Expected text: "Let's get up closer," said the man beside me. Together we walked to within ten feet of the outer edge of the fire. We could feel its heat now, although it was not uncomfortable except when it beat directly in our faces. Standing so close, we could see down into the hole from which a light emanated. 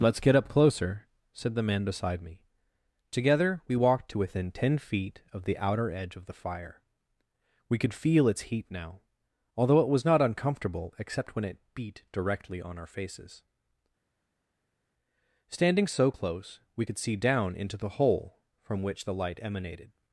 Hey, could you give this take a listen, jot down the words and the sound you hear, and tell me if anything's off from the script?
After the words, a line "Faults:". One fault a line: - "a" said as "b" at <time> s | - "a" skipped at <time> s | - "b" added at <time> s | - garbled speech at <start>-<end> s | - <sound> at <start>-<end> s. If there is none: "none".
"Let's get up closer," said the man beside me. Together we walked to within ten feet of the outer edge of the fire. We could feel its heat now, although it was not uncomfortable except when it beat directly on our faces. Standing so close, we could see down into the hole from which the light emanated.
Faults:
- "in" said as "on" at 12.6 s
- "a" said as "the" at 19.0 s